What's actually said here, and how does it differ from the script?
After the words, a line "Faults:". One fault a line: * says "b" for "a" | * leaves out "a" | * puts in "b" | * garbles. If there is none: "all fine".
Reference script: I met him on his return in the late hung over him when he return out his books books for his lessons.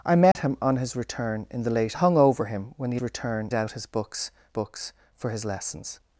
I met him on his return in the late hung over him when he return out his books books for his lessons.
Faults:
all fine